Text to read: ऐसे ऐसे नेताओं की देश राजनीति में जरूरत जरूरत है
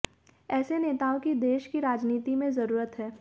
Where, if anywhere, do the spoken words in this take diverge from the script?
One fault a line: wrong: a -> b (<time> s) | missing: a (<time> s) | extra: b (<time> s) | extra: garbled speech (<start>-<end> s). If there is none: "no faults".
missing: ऐसे (0.8 s)
extra: की (1.7 s)
missing: जरूरत (3.0 s)